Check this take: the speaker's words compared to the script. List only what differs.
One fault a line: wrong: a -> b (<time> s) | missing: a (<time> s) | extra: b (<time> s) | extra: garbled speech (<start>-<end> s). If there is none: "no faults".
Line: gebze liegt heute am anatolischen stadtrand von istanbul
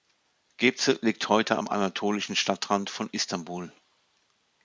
no faults